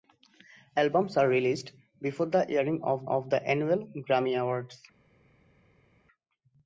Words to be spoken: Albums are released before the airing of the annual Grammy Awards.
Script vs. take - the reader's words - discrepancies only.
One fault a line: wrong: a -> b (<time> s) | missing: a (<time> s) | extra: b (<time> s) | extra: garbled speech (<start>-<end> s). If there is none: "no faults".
extra: of (3.1 s)